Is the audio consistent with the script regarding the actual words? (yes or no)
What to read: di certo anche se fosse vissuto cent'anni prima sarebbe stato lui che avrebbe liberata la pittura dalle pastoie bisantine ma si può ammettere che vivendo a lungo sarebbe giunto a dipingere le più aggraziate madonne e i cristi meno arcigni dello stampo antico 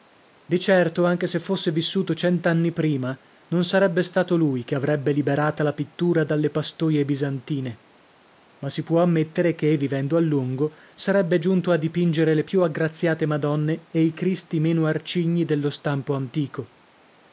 no